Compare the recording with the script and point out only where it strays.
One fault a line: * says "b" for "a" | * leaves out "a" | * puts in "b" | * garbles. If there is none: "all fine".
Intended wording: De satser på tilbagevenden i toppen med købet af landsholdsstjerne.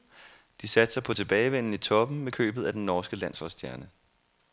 * puts in "den norske"